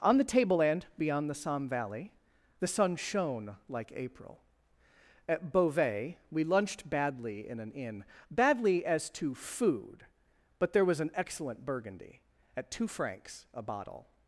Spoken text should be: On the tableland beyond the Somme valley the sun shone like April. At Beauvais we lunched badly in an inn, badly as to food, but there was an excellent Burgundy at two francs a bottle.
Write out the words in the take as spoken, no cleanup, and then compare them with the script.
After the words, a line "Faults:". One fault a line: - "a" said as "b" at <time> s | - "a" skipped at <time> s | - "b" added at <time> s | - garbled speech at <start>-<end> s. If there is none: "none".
On the tableland beyond the Somme valley the sun shone like April. At Beauvais we lunched badly in an inn, badly as to food, but there was an excellent Burgundy at two francs a bottle.
Faults:
none